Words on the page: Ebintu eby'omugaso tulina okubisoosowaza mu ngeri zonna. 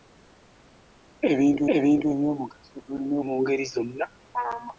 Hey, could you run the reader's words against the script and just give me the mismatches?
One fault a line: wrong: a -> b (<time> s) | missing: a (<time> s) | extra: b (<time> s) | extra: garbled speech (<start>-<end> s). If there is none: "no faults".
extra: ebintu (1.8 s)
missing: okubisoosowaza (3.2 s)